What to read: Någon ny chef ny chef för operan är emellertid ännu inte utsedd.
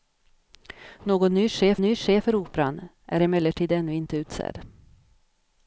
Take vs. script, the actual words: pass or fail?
pass